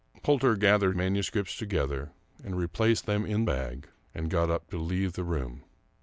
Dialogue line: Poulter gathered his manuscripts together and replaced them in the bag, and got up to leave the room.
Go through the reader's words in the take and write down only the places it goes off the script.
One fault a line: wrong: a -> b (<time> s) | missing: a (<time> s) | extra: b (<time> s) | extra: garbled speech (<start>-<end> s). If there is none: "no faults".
missing: his (0.9 s)
missing: the (3.4 s)